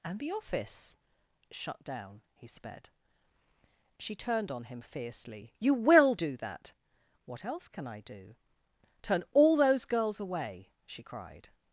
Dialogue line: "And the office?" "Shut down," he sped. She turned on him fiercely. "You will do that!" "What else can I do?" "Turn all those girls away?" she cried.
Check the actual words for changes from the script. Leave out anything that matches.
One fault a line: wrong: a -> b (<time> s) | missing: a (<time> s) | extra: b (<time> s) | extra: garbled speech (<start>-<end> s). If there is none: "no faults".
no faults